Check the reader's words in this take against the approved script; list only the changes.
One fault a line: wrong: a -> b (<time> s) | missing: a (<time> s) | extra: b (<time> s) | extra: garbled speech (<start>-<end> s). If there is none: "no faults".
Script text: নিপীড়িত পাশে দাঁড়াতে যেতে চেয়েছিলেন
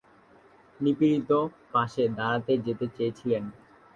no faults